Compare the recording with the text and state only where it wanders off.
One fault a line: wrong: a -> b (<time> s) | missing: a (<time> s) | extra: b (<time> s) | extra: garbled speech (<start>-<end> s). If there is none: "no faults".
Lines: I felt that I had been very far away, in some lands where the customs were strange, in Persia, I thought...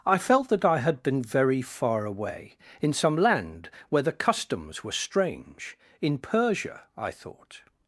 wrong: lands -> land (3.1 s)